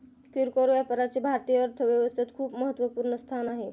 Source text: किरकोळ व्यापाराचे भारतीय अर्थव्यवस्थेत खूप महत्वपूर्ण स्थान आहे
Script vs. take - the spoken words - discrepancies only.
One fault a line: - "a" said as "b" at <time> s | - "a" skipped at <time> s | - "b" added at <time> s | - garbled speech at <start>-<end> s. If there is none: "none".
none